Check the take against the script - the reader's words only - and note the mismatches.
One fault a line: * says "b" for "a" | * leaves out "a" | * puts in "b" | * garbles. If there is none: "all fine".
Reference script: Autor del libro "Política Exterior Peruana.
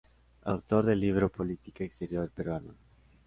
all fine